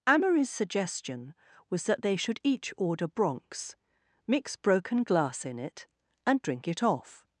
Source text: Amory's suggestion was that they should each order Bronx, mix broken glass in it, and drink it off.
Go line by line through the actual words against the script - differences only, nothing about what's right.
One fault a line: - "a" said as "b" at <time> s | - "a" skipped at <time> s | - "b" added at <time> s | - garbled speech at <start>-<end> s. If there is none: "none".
none